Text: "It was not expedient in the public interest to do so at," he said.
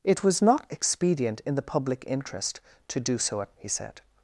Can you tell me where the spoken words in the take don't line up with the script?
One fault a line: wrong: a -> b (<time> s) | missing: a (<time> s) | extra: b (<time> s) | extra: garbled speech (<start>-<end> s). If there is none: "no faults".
no faults